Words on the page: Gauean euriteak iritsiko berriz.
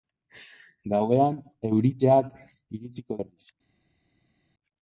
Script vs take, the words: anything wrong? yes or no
no